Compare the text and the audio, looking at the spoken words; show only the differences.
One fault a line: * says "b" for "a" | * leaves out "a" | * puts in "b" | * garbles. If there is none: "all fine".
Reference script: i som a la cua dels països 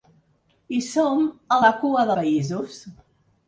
* leaves out "dels"